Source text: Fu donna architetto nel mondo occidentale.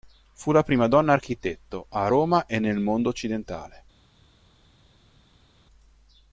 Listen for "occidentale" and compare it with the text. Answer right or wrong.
right